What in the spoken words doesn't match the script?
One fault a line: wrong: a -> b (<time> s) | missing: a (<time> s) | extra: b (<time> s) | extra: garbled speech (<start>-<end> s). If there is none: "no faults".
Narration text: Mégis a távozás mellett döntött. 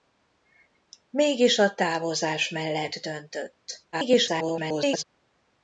extra: garbled speech (3.9-5.0 s)